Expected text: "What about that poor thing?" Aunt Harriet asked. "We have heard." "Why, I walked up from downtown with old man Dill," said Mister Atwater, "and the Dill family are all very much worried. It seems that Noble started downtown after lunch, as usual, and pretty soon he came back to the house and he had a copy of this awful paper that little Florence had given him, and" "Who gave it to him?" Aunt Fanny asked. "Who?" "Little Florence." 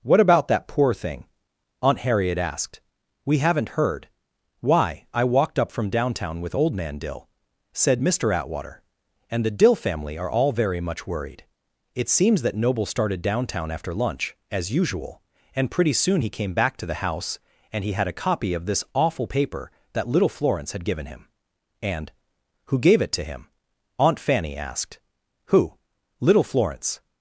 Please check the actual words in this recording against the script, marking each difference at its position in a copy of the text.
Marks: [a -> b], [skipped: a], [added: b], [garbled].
"What about that poor thing?" Aunt Harriet asked. "We [have -> haven't] heard." "Why, I walked up from downtown with old man Dill," said Mister Atwater, "and the Dill family are all very much worried. It seems that Noble started downtown after lunch, as usual, and pretty soon he came back to the house and he had a copy of this awful paper that little Florence had given him, and" "Who gave it to him?" Aunt Fanny asked. "Who?" "Little Florence."